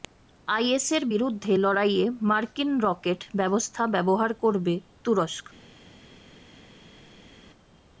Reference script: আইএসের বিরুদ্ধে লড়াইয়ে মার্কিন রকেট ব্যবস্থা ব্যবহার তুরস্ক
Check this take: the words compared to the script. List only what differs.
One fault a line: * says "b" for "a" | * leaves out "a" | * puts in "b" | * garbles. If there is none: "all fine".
* puts in "করবে"